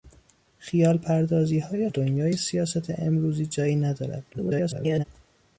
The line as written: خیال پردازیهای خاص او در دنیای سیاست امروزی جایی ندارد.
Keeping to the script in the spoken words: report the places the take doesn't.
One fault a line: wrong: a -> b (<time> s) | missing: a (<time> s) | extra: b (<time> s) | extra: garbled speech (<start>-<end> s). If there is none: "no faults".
missing: خاص او در (1.9 s)
extra: garbled speech (4.3-5.0 s)